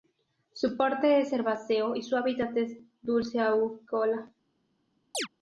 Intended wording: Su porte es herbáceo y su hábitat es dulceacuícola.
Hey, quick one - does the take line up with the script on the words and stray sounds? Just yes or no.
no